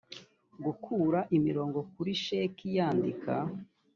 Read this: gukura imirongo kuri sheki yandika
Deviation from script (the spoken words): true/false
false